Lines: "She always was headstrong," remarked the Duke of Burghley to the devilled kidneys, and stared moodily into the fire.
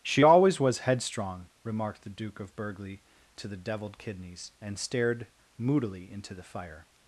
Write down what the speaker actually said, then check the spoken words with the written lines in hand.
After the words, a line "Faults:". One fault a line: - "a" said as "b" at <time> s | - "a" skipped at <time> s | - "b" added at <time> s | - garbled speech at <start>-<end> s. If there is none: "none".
"She always was headstrong," remarked the Duke of Burghley to the devilled kidneys, and stared moodily into the fire.
Faults:
none